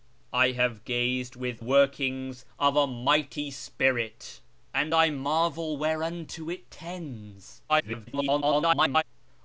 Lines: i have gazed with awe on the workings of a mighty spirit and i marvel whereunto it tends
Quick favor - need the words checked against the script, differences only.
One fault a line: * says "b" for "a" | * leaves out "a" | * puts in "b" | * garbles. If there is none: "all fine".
* leaves out "awe on the"
* garbles